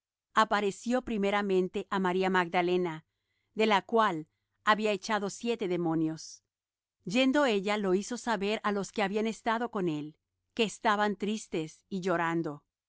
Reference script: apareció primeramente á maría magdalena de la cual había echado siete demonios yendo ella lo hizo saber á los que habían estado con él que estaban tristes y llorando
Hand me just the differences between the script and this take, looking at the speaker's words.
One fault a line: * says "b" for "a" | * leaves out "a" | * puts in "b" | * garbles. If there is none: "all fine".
all fine